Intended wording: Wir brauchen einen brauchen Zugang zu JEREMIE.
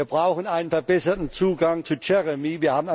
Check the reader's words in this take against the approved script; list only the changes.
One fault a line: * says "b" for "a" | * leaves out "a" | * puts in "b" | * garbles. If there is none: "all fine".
* says "verbesserten" for "brauchen"